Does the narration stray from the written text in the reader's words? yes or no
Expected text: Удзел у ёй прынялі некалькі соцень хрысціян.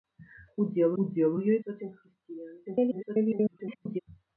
yes